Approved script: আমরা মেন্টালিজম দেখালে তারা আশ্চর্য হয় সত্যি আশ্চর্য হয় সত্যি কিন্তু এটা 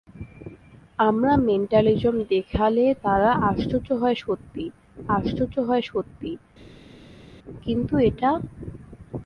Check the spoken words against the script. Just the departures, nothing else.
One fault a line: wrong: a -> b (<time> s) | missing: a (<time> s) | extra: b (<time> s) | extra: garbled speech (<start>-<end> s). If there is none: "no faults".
no faults